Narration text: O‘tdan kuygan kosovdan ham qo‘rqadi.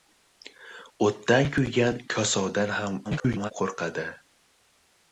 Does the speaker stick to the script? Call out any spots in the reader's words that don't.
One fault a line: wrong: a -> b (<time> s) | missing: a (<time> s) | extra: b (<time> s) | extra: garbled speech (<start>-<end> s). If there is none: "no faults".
extra: garbled speech (3.0-3.5 s)